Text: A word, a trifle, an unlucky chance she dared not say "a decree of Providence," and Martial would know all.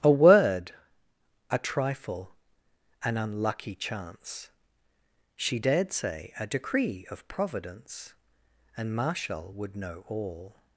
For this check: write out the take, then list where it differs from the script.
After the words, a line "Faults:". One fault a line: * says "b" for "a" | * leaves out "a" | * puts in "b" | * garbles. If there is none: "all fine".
A word, a trifle, an unlucky chance she dared say "a decree of Providence," and Martial would know all.
Faults:
* leaves out "not"